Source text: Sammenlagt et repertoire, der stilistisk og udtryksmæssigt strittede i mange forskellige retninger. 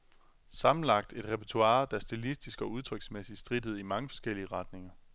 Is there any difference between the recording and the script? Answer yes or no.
no